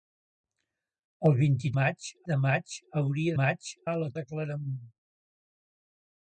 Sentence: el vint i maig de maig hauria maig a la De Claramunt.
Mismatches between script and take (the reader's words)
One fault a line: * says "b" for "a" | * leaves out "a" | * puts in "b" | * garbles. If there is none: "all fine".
all fine